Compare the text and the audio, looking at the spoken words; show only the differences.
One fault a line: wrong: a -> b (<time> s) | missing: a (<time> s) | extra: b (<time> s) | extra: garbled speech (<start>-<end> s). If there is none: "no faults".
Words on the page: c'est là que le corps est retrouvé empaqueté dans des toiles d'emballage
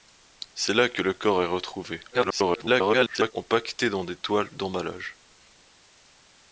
extra: garbled speech (2.1-3.3 s)